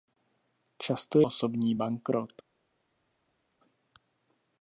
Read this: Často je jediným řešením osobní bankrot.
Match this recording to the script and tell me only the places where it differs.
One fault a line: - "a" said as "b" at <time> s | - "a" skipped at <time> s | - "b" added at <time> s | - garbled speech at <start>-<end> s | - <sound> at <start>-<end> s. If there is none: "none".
- "je jediným řešením" skipped at 1.2 s